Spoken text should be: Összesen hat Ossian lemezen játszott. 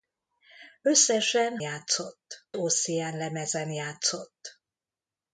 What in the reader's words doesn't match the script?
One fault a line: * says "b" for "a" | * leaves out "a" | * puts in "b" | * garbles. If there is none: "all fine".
* says "játszott" for "hat"